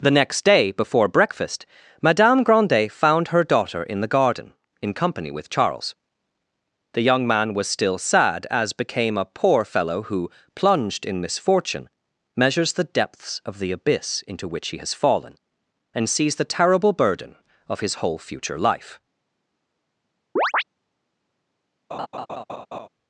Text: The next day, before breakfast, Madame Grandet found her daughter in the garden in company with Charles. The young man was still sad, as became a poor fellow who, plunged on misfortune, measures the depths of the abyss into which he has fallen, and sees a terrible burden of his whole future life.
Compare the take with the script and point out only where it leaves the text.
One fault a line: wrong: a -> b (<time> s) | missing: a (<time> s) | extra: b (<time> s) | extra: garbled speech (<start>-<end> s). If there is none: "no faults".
wrong: on -> in (11.1 s)
wrong: a -> the (16.4 s)